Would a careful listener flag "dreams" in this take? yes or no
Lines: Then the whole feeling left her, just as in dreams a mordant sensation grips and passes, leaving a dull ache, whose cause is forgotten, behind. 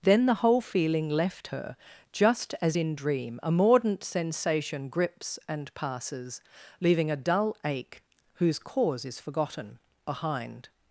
yes